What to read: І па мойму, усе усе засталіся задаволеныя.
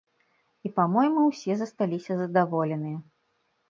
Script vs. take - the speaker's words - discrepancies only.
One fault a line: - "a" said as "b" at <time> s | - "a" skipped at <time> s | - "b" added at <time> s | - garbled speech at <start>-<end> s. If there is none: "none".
- "усе" skipped at 1.5 s